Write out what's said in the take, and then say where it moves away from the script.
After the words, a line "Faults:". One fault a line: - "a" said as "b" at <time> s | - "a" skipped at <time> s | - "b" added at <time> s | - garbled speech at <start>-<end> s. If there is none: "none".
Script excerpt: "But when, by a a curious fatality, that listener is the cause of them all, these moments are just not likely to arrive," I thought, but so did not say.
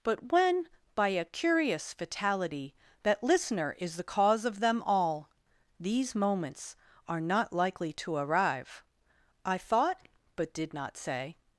"But when, by a curious fatality, that listener is the cause of them all, these moments are not likely to arrive," I thought, but did not say.
Faults:
- "a" skipped at 1.2 s
- "just" skipped at 7.2 s
- "so" skipped at 10.5 s